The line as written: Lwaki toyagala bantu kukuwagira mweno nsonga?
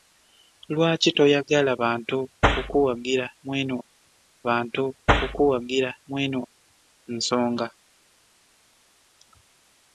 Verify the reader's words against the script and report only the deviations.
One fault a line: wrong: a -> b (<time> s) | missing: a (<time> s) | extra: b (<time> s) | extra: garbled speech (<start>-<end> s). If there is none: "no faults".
extra: bantu kukuwagira mweno (4.5 s)